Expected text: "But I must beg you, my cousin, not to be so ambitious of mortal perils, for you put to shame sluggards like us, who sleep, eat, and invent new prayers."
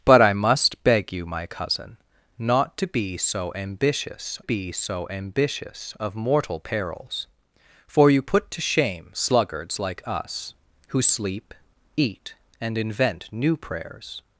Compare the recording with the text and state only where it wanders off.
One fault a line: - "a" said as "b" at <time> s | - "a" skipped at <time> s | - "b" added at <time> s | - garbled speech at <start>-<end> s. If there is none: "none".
- "be so ambitious" added at 4.4 s